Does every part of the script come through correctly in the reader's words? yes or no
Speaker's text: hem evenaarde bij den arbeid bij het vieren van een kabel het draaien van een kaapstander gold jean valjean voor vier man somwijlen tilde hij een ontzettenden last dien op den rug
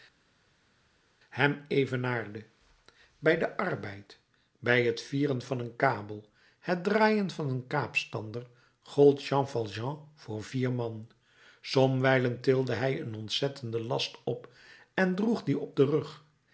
no